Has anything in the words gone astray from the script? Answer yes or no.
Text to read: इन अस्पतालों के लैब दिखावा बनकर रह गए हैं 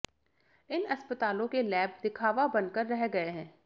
no